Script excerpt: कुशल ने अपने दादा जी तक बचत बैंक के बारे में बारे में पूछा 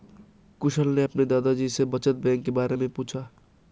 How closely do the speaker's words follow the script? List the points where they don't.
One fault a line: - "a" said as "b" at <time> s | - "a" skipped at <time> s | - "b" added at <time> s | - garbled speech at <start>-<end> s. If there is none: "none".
- "तक" said as "से" at 1.7 s
- "बारे में" skipped at 2.9 s